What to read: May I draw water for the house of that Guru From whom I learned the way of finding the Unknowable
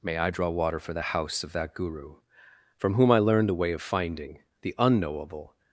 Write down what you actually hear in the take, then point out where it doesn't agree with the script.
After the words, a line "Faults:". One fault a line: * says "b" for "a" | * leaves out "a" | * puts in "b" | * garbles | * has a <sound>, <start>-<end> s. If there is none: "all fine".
May I draw water for the house of that Guru From whom I learned the way of finding the Unknowable
Faults:
all fine